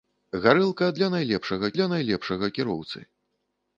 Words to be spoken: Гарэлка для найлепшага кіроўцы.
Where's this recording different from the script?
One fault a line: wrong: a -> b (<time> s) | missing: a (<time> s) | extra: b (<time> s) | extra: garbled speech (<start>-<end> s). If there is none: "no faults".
extra: для найлепшага (1.8 s)